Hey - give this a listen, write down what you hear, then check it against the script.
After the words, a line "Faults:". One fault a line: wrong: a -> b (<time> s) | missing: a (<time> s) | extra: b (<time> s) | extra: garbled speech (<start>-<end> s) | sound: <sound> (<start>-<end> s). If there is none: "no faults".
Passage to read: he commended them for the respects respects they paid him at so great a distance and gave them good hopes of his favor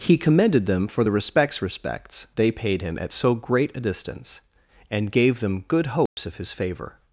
he commended them for the respects respects they paid him at so great a distance and gave them good hopes of his favor
Faults:
sound: dropout (6.1-6.2 s)